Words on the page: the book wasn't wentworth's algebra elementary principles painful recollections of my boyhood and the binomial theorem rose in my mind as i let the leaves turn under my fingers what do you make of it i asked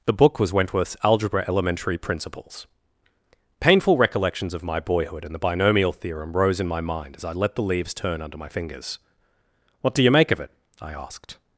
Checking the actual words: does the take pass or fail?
fail